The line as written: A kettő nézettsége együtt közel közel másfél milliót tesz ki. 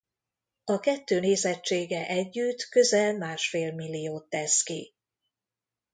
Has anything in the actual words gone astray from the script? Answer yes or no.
yes